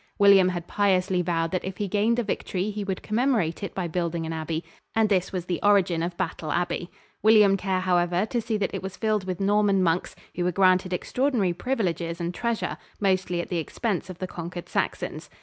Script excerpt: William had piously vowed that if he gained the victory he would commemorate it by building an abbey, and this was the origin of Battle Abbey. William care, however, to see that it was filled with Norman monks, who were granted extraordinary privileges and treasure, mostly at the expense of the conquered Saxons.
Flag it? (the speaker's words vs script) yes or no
no